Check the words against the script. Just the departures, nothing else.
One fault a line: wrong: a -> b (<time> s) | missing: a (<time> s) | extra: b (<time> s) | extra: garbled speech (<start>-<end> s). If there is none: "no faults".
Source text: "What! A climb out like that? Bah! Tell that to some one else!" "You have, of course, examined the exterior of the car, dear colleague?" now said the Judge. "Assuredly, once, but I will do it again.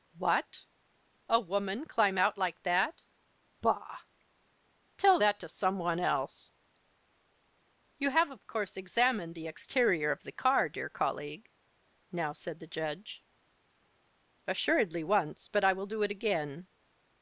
extra: woman (1.4 s)